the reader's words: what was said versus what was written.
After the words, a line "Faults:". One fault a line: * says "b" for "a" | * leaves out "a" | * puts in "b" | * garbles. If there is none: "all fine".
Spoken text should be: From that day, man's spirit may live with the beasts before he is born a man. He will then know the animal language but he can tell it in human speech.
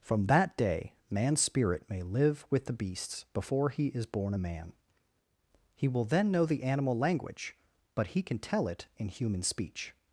From that day, man's spirit may live with the beasts before he is born a man. He will then know the animal language but he can tell it in human speech.
Faults:
all fine